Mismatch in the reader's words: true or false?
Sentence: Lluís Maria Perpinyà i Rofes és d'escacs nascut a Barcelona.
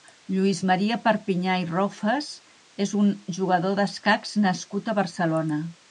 true